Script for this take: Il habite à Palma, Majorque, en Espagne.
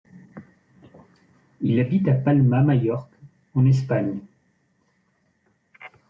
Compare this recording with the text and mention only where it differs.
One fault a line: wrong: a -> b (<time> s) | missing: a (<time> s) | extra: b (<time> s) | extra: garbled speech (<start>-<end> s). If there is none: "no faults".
no faults